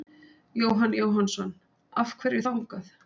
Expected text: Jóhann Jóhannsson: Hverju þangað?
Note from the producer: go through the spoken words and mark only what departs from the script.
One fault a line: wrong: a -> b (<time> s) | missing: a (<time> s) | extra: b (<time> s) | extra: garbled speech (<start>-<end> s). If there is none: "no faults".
extra: Af (2.0 s)